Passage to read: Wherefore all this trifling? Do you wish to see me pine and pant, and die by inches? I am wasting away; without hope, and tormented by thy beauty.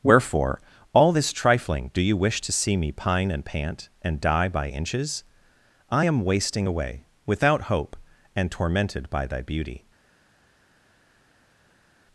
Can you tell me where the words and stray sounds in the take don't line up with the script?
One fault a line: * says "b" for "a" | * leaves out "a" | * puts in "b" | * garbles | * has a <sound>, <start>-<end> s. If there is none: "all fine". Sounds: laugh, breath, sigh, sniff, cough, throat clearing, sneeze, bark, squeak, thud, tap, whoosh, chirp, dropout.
all fine